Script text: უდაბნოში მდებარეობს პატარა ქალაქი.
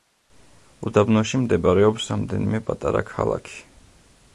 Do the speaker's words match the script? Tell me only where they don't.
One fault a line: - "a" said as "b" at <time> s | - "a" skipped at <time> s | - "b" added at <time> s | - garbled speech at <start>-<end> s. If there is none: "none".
- "რამდენიმე" added at 2.1 s